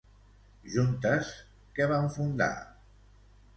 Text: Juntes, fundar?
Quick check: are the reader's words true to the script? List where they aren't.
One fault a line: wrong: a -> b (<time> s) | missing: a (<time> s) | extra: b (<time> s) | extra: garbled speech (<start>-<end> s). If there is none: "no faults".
extra: què van (1.8 s)